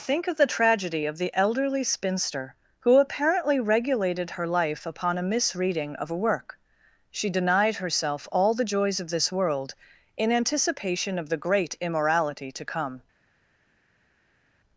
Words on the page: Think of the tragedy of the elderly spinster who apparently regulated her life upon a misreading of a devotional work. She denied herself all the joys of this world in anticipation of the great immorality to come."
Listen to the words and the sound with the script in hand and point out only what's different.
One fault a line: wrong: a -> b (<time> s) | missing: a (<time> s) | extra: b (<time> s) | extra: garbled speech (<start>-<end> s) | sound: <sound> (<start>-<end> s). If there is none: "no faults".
missing: devotional (6.2 s)